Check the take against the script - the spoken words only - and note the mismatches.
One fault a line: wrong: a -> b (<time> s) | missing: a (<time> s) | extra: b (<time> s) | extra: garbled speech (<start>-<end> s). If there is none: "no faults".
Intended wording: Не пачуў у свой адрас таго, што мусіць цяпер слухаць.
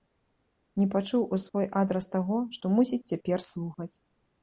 no faults